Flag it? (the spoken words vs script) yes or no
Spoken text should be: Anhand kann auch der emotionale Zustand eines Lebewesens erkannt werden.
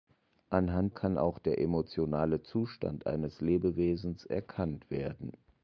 no